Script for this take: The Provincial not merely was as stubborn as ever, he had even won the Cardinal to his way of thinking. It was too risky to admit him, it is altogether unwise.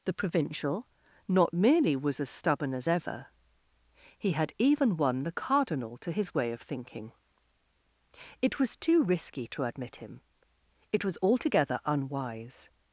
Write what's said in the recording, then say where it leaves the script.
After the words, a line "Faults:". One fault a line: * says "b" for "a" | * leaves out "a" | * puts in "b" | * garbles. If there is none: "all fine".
The Provincial not merely was as stubborn as ever, he had even won the Cardinal to his way of thinking. It was too risky to admit him, it was altogether unwise.
Faults:
* says "was" for "is"